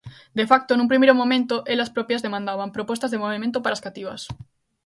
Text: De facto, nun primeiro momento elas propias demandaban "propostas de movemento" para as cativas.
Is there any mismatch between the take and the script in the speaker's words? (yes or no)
no